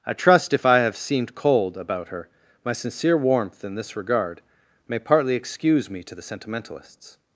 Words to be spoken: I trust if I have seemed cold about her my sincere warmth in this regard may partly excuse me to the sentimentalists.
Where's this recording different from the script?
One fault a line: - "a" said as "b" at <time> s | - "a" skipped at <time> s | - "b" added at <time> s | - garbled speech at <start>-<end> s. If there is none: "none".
none